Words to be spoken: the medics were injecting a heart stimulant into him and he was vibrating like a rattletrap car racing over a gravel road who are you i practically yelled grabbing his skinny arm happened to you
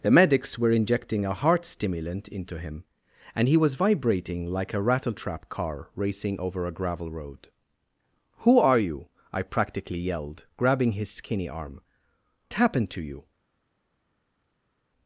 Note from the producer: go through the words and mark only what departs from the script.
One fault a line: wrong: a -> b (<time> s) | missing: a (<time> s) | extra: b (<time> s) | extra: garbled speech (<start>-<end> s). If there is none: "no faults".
no faults